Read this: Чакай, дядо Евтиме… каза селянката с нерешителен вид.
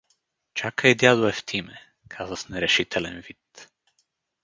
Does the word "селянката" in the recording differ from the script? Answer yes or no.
yes